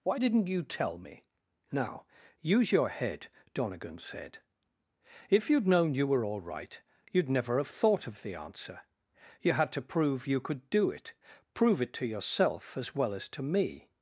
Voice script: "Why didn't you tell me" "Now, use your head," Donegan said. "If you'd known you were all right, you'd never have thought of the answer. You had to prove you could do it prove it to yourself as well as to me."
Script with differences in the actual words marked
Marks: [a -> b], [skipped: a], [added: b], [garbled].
"Why didn't you tell me" "Now, use your head," Donegan said. "If you'd known you were all right, you'd never have thought of the answer. You had to prove you could do it prove it to yourself as well as to me."